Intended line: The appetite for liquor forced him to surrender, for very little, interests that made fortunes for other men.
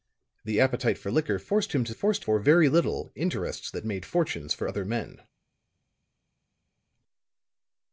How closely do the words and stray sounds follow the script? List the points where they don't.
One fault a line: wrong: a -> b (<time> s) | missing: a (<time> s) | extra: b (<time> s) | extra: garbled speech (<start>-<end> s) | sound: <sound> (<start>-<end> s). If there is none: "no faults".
wrong: surrender -> forced (1.9 s)